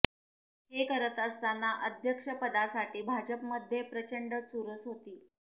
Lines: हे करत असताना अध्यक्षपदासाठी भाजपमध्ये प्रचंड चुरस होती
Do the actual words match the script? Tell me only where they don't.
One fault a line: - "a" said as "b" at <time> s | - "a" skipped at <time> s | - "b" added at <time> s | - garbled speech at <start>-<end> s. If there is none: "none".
none